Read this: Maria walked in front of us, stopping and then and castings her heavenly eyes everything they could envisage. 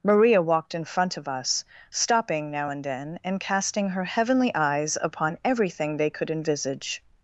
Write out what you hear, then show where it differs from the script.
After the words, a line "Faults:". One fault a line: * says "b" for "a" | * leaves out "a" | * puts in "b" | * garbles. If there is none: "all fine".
Maria walked in front of us, stopping now and then and casting her heavenly eyes upon everything they could envisage.
Faults:
* puts in "now"
* says "casting" for "castings"
* puts in "upon"